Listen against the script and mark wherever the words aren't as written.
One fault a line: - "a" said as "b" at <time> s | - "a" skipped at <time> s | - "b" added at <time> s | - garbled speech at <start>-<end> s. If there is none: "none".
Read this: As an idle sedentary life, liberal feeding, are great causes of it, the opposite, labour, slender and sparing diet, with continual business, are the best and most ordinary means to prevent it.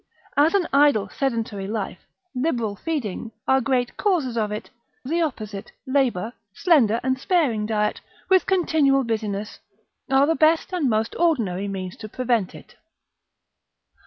none